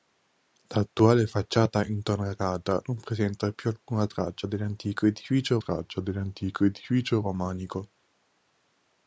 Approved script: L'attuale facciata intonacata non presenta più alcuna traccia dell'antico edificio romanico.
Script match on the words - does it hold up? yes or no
no